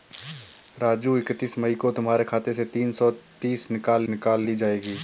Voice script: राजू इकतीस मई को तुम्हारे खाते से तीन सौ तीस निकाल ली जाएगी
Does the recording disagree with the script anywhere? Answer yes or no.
yes